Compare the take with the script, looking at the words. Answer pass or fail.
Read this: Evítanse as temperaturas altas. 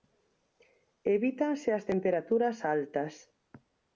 pass